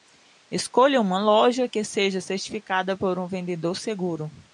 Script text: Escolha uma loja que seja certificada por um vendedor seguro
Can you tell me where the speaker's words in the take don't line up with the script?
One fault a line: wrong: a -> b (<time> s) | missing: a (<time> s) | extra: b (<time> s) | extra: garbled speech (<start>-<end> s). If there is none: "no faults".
no faults